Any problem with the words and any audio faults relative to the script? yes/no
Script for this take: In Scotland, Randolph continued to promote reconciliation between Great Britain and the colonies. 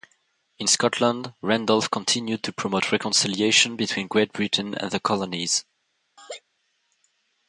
yes